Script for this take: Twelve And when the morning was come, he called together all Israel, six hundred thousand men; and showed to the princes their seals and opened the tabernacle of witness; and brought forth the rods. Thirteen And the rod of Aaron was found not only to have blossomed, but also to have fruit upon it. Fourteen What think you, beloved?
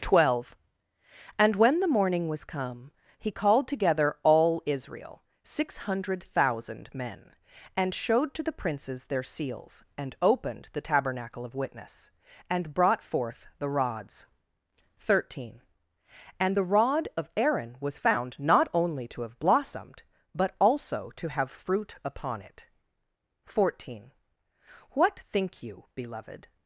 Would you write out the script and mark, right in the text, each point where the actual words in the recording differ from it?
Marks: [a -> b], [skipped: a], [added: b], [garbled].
Twelve And when the morning was come, he called together all Israel, six hundred thousand men; and showed to the princes their seals and opened the tabernacle of witness; and brought forth the rods. Thirteen And the rod of Aaron was found not only to have blossomed, but also to have fruit upon it. Fourteen What think you, beloved?